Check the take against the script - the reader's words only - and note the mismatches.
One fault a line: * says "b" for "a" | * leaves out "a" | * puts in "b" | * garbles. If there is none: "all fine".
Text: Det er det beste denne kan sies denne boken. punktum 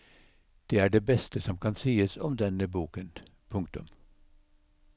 * says "som" for "denne"
* puts in "om"